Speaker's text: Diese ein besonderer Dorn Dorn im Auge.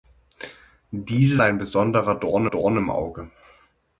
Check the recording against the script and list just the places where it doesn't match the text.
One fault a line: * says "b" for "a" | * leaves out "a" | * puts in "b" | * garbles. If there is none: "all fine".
all fine